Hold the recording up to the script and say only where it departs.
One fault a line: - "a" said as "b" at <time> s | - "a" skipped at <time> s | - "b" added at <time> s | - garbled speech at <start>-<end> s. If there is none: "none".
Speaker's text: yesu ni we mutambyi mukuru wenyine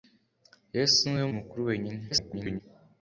- "mutambyi" skipped at 1.3 s
- garbled speech at 2.1-2.6 s